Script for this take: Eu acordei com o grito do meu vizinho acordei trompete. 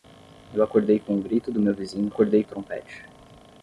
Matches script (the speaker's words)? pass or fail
pass